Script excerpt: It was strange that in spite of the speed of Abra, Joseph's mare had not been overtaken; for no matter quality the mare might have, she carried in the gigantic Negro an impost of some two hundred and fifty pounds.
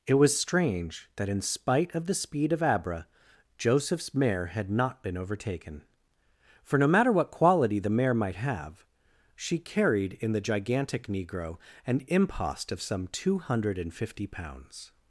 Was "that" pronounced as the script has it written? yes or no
yes